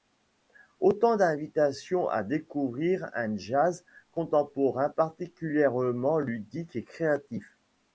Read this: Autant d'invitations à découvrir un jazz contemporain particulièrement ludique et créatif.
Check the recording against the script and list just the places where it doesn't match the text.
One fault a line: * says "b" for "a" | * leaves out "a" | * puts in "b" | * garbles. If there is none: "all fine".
all fine